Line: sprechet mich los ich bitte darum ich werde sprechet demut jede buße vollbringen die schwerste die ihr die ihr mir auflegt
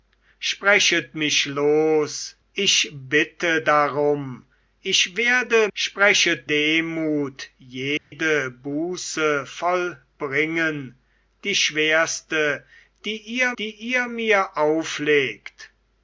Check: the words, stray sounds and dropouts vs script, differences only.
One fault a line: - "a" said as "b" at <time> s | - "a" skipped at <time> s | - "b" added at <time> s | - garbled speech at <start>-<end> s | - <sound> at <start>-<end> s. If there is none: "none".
- dropout at 8.0-8.1 s